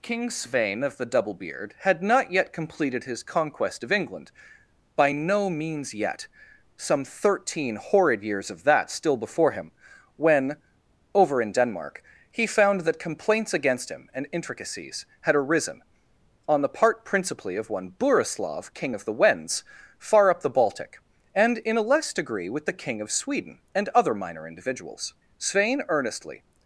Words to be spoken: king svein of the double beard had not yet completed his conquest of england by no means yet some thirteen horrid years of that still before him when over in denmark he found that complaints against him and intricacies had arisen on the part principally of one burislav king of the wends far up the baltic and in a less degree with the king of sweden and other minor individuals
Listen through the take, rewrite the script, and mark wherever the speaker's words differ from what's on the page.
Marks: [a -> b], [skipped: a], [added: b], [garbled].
king svein of the double beard had not yet completed his conquest of england by no means yet some thirteen horrid years of that still before him when over in denmark he found that complaints against him and intricacies had arisen on the part principally of one burislav king of the wends far up the baltic and in a less degree with the king of sweden and other minor individuals [added: svein earnestly]